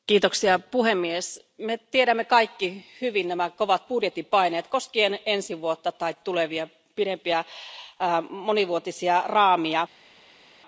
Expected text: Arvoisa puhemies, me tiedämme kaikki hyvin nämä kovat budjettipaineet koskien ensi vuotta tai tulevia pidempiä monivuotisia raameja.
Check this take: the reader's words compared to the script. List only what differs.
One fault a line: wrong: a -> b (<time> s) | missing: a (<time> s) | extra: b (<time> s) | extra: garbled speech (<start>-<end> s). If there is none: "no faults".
no faults